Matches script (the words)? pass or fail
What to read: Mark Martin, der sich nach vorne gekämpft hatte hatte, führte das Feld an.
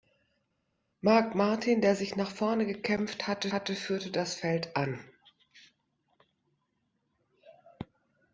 pass